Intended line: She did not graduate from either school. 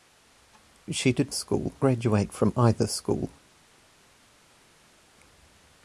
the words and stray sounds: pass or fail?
fail